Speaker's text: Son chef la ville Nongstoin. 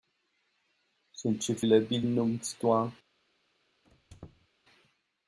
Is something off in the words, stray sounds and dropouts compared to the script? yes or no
yes